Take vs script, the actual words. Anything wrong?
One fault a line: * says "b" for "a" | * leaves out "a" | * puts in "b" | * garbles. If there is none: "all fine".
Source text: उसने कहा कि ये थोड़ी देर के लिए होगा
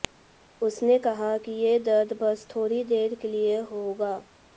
* puts in "दर्द बस"